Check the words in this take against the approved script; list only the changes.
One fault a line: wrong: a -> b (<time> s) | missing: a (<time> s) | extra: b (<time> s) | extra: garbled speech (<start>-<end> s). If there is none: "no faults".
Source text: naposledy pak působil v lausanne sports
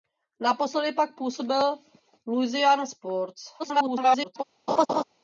extra: garbled speech (3.6-4.4 s)